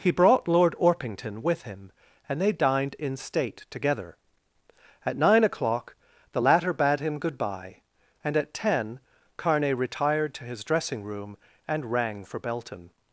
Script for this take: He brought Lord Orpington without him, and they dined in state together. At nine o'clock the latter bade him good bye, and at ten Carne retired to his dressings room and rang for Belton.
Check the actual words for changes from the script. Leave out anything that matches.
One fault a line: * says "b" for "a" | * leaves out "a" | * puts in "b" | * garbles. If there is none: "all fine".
* says "with" for "without"
* says "dressing" for "dressings"